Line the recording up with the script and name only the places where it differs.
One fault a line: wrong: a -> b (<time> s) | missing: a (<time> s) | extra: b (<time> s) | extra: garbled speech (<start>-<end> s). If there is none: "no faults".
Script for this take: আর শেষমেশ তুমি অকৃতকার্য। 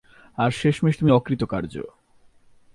no faults